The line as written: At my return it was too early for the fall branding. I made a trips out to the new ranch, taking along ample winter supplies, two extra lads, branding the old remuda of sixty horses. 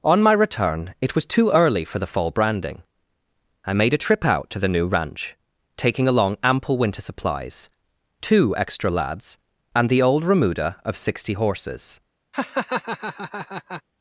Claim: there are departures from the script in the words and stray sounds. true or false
true